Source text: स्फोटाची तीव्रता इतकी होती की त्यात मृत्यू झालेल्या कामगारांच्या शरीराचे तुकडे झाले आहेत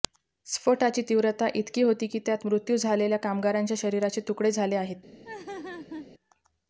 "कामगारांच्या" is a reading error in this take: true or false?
false